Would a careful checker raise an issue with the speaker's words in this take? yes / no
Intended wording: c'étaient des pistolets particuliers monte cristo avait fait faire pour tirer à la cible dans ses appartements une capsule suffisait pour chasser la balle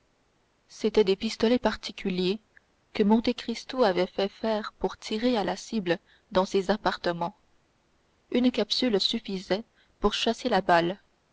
yes